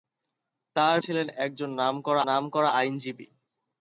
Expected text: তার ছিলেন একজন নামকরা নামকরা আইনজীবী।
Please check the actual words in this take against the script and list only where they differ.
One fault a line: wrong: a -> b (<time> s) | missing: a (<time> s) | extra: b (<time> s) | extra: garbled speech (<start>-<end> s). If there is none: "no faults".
no faults